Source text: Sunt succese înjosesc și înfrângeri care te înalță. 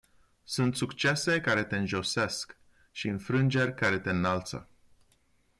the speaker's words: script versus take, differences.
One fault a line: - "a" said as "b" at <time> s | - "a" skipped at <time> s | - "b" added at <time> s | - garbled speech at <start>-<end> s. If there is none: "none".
- "care te" added at 1.4 s